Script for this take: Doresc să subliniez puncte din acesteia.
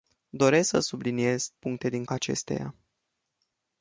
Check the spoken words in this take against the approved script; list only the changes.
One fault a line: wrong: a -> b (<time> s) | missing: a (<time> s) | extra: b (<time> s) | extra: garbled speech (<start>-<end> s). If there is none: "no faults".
no faults